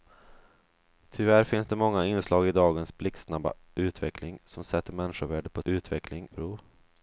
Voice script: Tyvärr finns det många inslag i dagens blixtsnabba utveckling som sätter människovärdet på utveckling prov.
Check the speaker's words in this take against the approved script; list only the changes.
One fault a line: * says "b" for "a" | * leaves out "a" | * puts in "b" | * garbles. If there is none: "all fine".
all fine